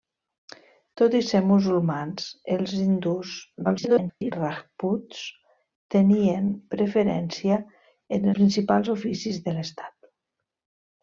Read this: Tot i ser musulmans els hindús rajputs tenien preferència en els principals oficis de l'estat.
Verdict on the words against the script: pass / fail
fail